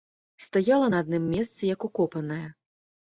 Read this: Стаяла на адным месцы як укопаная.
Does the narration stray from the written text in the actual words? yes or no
no